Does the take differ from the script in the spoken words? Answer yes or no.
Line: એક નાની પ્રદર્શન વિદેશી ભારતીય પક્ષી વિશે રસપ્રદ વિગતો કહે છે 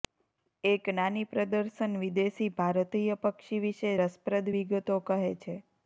no